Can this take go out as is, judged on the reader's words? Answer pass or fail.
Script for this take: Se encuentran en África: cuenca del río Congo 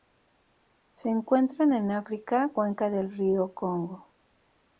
pass